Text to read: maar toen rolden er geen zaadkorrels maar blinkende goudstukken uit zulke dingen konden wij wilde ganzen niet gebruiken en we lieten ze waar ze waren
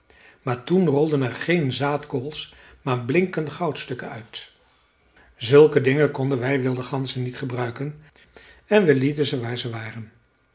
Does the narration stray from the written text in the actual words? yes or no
no